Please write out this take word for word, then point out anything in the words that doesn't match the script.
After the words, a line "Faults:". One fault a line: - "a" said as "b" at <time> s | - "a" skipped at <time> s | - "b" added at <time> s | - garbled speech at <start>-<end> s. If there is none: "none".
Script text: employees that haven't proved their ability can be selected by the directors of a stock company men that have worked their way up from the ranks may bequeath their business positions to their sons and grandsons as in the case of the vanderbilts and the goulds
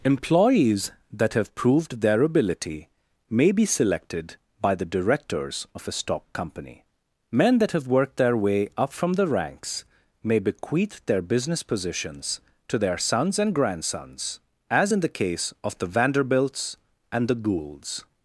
employees that have proved their ability may be selected by the directors of a stock company men that have worked their way up from the ranks may bequeath their business positions to their sons and grandsons as in the case of the vanderbilts and the goulds
Faults:
- "haven't" said as "have" at 1.4 s
- "can" said as "may" at 3.3 s